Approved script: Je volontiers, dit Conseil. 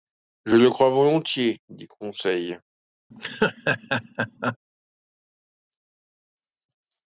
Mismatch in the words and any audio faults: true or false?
true